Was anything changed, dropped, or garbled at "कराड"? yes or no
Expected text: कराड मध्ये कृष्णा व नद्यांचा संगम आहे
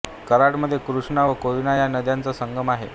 no